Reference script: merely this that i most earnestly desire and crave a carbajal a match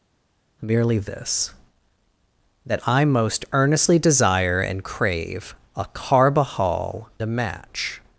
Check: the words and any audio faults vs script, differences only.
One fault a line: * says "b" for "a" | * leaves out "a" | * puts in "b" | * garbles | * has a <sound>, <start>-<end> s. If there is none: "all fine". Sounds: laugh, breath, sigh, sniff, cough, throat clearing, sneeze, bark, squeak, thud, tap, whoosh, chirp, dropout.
all fine